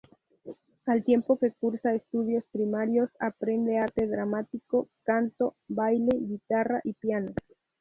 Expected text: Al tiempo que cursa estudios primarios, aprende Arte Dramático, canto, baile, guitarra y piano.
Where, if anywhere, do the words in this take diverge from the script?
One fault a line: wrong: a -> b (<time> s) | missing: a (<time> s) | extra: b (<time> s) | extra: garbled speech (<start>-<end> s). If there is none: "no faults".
no faults